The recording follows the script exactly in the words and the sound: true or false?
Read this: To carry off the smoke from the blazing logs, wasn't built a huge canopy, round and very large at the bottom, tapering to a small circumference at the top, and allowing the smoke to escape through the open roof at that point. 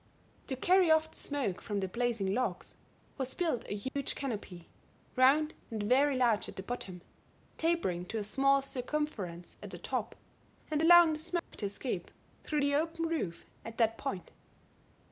false